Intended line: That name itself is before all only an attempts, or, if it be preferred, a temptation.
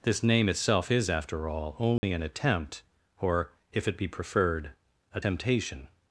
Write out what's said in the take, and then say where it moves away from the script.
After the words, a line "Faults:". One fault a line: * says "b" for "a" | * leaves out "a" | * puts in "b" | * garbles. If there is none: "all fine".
This name itself is after all only an attempt, or, if it be preferred, a temptation.
Faults:
* says "This" for "That"
* says "after" for "before"
* says "attempt" for "attempts"